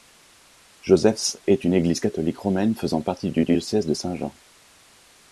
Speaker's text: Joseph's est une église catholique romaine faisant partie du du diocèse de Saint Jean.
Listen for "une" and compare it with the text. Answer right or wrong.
right